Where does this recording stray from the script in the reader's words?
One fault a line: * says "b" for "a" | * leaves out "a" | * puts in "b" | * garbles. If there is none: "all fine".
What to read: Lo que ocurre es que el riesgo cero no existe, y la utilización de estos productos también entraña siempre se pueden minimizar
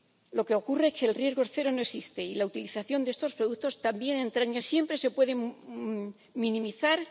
all fine